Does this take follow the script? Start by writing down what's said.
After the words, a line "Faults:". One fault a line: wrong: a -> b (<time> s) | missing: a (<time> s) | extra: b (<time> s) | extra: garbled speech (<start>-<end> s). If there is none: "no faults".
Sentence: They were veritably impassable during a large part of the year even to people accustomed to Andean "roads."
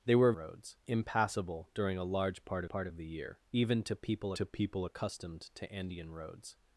They were roads impassable during a large part part of the year even to people to people accustomed to Andean "roads."
Faults:
wrong: veritably -> roads (0.3 s)
extra: part (2.7 s)
extra: to people (4.3 s)